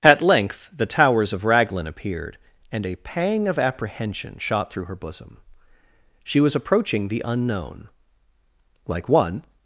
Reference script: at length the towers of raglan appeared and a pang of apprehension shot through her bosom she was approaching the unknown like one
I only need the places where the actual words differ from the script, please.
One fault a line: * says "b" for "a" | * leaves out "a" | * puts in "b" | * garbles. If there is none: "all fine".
all fine